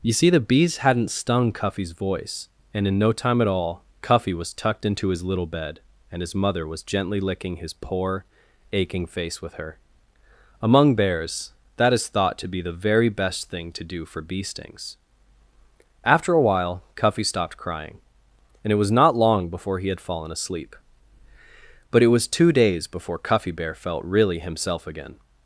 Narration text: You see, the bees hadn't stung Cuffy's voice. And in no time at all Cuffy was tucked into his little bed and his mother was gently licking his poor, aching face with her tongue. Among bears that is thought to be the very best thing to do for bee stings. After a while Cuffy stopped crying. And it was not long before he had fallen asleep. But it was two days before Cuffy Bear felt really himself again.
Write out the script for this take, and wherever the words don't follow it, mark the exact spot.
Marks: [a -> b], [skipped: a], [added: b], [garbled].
You see, the bees hadn't stung Cuffy's voice. And in no time at all Cuffy was tucked into his little bed and his mother was gently licking his poor, aching face with her [skipped: tongue.] Among bears that is thought to be the very best thing to do for bee stings. After a while Cuffy stopped crying. And it was not long before he had fallen asleep. But it was two days before Cuffy Bear felt really himself again.